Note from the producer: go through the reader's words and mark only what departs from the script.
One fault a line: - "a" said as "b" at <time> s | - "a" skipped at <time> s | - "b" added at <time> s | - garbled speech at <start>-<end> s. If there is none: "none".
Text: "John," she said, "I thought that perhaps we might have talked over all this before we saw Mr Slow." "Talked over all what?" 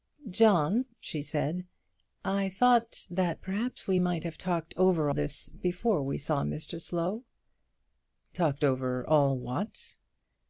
- "all" skipped at 5.1 s